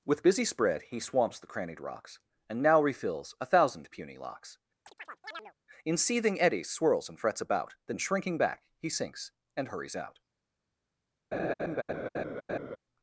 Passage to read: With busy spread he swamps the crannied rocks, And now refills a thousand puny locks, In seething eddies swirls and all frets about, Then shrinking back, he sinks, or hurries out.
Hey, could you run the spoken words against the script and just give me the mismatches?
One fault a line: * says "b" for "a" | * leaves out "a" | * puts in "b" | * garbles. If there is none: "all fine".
* leaves out "all"
* says "and" for "or"